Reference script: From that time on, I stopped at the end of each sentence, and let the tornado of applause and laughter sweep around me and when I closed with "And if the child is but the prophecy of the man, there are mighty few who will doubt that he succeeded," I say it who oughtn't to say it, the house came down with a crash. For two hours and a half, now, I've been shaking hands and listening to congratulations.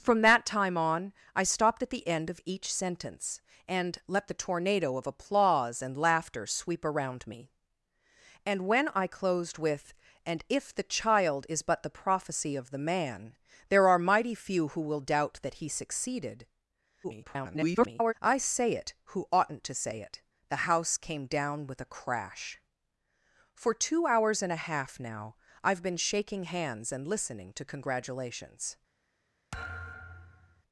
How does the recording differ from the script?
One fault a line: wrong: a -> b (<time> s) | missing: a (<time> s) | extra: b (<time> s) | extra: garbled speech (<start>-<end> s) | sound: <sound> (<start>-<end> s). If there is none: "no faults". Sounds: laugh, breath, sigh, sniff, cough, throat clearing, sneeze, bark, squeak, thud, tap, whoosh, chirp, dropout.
extra: garbled speech (17.0-18.1 s)
sound: thud (29.5-30.6 s)